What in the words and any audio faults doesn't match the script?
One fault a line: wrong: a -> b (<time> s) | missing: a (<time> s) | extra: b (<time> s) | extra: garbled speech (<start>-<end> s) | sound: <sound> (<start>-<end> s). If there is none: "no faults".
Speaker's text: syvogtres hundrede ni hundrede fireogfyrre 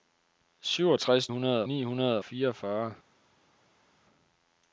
no faults